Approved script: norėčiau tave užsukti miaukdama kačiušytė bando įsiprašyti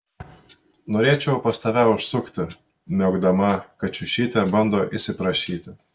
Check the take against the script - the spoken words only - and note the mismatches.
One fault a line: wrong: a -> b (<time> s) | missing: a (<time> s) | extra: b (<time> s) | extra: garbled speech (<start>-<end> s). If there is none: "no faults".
extra: pas (1.4 s)